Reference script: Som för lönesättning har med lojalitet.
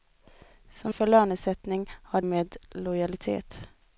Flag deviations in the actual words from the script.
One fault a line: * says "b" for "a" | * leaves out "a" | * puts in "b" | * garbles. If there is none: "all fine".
all fine